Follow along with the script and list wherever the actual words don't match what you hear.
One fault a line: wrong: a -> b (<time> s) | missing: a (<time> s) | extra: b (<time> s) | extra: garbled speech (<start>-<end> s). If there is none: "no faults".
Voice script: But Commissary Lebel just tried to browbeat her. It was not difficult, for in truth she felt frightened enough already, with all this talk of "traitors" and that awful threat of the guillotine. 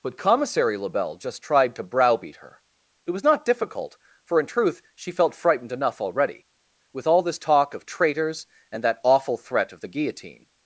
no faults